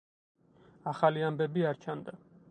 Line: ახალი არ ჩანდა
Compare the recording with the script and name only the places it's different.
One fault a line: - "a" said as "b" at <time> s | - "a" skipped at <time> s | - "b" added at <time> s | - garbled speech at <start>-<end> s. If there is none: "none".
- "ამბები" added at 1.3 s